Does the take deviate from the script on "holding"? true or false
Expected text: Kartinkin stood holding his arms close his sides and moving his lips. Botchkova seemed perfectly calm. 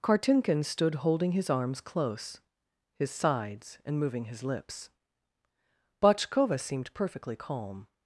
false